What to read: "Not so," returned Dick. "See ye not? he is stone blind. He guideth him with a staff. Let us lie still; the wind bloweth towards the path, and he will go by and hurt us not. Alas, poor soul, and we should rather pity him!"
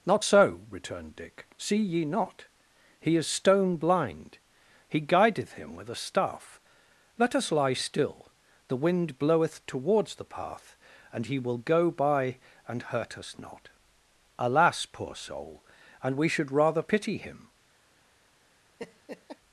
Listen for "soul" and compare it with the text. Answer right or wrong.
right